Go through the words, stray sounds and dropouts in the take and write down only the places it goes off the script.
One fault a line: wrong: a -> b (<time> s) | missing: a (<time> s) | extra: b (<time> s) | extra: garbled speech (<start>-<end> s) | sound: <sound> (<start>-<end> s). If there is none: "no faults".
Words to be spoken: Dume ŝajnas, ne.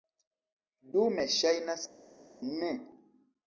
no faults